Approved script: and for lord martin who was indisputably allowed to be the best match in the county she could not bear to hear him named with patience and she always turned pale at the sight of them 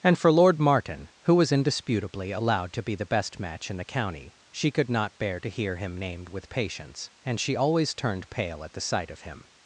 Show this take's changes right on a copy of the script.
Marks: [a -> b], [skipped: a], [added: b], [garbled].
and for lord martin who was indisputably allowed to be the best match in the county she could not bear to hear him named with patience and she always turned pale at the sight of [them -> him]